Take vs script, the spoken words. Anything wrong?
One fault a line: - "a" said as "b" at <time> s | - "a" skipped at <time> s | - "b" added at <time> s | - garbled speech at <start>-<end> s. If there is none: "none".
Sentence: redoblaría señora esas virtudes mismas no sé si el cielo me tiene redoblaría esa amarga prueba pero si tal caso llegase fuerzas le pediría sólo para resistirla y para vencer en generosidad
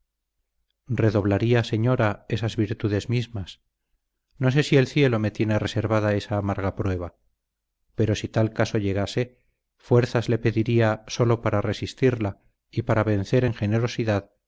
- "redoblaría" said as "reservada" at 5.6 s